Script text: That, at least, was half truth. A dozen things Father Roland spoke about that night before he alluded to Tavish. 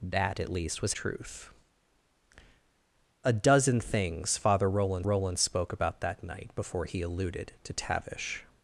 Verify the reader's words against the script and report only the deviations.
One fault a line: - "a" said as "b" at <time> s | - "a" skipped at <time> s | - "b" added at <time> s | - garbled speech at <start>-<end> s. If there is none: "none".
- "half" skipped at 0.9 s
- "Roland" added at 5.0 s